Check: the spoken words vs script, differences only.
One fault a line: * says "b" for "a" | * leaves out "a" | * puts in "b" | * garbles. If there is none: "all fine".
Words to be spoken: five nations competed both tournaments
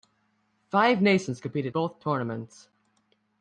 all fine